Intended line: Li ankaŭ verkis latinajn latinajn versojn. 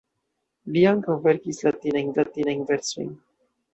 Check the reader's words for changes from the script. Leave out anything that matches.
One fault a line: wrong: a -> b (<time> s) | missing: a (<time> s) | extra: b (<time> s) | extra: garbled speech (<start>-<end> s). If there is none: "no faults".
no faults